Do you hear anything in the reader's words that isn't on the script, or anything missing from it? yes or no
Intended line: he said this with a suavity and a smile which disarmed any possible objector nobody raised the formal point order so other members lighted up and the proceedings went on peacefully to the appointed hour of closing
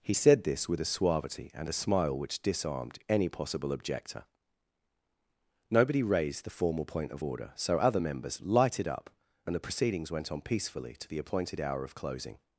yes